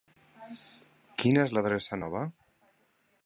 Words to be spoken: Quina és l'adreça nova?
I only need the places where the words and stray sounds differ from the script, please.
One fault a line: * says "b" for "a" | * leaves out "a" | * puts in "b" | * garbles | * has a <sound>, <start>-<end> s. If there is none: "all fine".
all fine